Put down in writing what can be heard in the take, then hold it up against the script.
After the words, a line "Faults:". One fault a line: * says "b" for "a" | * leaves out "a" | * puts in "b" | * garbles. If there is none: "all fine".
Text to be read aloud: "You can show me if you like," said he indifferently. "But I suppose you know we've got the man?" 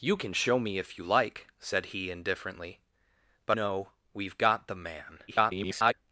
"You can show me if you like," said he indifferently. "But know we've got the man?" [garbled]
Faults:
* leaves out "I suppose you"
* garbles